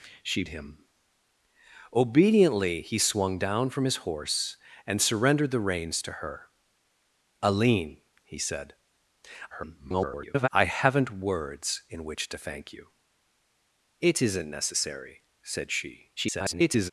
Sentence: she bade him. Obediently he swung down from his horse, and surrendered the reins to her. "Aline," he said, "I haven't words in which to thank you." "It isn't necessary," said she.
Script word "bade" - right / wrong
wrong